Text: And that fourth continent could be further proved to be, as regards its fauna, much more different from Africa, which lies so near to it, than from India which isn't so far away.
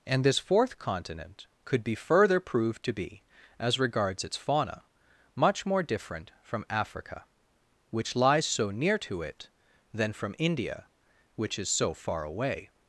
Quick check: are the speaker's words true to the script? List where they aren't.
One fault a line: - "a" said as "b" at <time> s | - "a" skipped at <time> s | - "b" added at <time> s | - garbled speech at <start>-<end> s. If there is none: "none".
- "that" said as "this" at 0.2 s
- "isn't" said as "is" at 11.6 s